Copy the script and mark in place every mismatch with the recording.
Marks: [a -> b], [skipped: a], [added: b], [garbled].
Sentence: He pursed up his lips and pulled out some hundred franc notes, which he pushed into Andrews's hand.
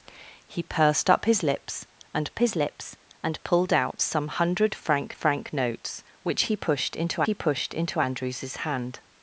He pursed up his lips and [added: his lips and] pulled out some hundred franc [added: franc] notes, which he pushed into [added: he pushed into] Andrews's hand.